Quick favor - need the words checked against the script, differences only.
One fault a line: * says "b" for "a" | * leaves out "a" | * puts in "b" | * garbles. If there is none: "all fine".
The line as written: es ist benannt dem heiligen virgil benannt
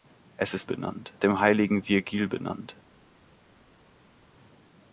all fine